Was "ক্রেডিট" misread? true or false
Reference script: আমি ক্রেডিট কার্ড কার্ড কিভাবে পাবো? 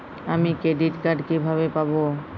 false